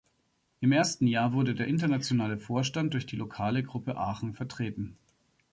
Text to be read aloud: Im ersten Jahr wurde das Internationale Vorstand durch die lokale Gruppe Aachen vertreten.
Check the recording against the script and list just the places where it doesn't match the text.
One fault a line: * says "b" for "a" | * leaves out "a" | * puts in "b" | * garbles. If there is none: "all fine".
* says "der" for "das"